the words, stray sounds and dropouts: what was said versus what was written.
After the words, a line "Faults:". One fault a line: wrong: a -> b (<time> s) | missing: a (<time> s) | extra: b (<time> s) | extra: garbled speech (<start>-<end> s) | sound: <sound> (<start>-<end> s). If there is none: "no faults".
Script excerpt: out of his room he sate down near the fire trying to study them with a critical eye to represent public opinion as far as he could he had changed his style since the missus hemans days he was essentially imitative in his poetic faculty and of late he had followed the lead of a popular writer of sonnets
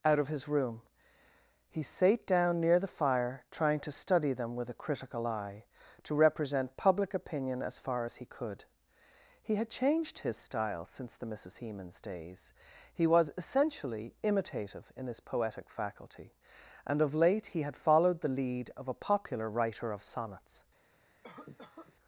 out of his room he sate down near the fire trying to study them with a critical eye to represent public opinion as far as he could he had changed his style since the missus hemans days he was essentially imitative in his poetic faculty and of late he had followed the lead of a popular writer of sonnets
Faults:
sound: cough (21.2-22.0 s)